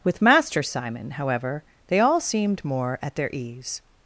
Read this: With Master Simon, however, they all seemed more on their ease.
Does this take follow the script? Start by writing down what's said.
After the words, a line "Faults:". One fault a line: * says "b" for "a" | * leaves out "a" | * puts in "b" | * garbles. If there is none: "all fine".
With Master Simon, however, they all seemed more at their ease.
Faults:
* says "at" for "on"